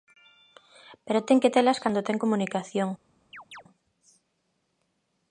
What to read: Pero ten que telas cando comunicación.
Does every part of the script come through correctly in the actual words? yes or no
no